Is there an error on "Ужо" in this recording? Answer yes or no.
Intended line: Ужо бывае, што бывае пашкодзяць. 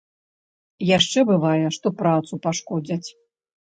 yes